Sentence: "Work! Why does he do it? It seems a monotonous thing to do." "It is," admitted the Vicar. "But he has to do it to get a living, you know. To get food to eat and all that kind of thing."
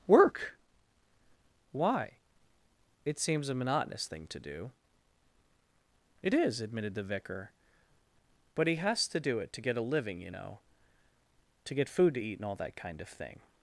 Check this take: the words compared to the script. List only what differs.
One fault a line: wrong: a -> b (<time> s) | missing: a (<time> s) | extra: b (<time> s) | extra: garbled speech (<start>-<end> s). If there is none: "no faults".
missing: does he do it (2.1 s)